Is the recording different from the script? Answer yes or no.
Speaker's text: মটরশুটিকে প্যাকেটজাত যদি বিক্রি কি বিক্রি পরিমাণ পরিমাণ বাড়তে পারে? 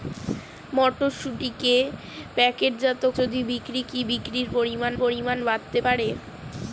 no